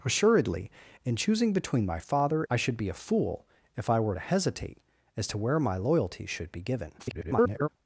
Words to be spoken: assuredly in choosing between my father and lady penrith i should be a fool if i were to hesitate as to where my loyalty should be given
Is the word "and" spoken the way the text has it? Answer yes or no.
no